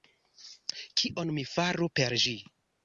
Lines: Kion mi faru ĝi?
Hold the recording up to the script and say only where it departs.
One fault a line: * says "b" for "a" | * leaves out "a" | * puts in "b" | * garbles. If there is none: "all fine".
* puts in "per"